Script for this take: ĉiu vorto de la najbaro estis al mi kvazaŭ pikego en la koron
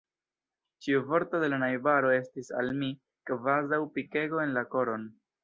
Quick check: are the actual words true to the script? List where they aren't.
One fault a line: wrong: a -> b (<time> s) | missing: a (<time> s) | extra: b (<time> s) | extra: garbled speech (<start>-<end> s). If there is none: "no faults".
no faults